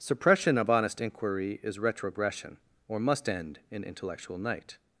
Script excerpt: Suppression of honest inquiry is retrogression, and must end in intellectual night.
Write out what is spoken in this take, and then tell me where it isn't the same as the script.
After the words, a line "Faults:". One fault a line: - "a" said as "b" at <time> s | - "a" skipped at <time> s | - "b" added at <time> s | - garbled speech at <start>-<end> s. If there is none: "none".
Suppression of honest inquiry is retrogression, or must end in intellectual night.
Faults:
- "and" said as "or" at 2.9 s